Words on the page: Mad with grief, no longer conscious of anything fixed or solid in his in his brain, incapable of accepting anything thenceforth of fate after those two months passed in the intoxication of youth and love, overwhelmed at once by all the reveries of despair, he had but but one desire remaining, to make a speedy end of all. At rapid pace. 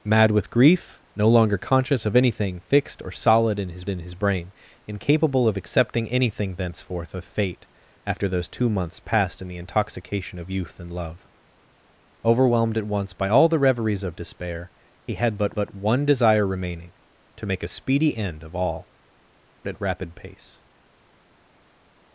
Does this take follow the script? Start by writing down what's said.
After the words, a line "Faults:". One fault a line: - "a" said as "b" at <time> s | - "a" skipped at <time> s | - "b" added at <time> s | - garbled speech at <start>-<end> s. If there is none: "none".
Mad with grief, no longer conscious of anything fixed or solid in his in his brain, incapable of accepting anything thenceforth of fate after those two months passed in the intoxication of youth and love, overwhelmed at once by all the reveries of despair, he had but but one desire remaining, to make a speedy end of all. At rapid pace.
Faults:
none